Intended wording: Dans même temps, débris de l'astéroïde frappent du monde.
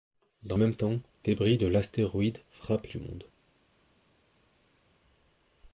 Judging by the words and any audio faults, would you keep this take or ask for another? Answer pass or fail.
pass